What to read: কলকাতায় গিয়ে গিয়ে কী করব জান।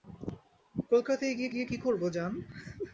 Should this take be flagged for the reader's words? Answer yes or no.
no